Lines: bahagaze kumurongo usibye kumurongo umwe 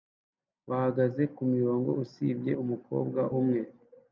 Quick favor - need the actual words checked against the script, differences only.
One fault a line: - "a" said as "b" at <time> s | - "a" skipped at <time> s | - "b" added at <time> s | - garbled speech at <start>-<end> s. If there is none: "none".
- "kumurongo" said as "umukobwa" at 2.6 s